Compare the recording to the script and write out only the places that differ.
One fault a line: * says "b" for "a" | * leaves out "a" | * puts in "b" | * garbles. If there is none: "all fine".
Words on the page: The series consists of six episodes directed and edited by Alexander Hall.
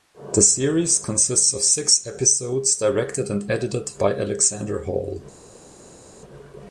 all fine